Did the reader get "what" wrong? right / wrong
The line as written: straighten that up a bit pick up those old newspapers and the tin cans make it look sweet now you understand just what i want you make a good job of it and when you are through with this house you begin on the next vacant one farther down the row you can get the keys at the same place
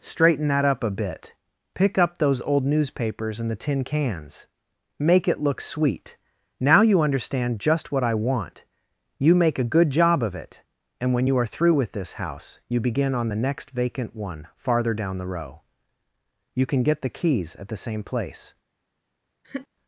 right